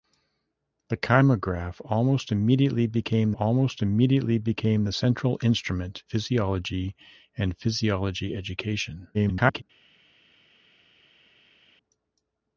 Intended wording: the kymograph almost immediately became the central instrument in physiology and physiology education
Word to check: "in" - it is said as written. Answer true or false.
false